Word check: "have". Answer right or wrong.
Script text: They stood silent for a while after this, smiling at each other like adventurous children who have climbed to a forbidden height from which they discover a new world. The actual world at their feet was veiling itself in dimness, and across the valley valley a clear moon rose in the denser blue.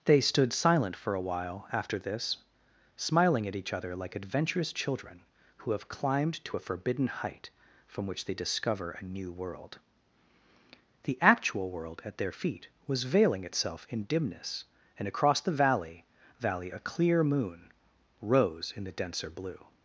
right